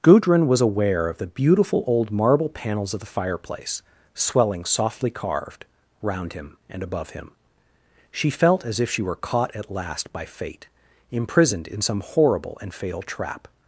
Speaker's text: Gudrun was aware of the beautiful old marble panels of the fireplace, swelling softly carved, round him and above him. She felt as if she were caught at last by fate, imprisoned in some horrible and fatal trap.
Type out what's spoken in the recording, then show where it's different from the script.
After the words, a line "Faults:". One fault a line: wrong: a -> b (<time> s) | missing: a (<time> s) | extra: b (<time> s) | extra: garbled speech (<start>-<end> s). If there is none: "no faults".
Gudrun was aware of the beautiful old marble panels of the fireplace, swelling softly carved, round him and above him. She felt as if she were caught at last by fate, imprisoned in some horrible and fatal trap.
Faults:
no faults